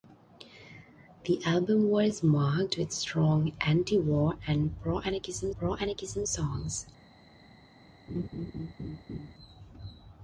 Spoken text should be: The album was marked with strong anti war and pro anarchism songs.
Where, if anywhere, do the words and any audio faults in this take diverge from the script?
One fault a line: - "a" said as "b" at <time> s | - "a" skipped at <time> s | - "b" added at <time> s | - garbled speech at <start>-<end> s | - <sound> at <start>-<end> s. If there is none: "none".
- "pro anarchism" added at 5.6 s
- laugh at 8.1-9.3 s